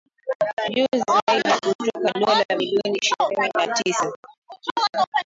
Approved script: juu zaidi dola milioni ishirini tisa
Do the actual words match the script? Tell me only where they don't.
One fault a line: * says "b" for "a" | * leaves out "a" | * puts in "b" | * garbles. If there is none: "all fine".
* puts in "kutoka"
* puts in "na"